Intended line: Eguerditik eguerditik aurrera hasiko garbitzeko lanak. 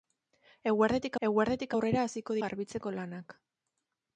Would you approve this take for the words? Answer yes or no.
yes